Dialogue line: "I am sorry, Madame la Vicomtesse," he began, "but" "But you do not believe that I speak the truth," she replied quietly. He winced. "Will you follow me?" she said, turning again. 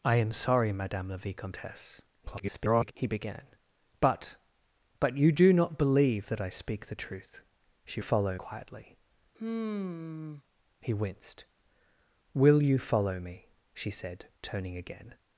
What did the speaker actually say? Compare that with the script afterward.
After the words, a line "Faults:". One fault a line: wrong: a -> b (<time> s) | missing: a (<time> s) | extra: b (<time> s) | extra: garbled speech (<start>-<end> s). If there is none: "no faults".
"I am sorry, Madame la Vicomtesse," [garbled] he began, "but" "But you do not believe that I speak the truth," she follow quietly. He winced. "Will you follow me?" she said, turning again.
Faults:
extra: garbled speech (2.2-2.9 s)
wrong: replied -> follow (8.0 s)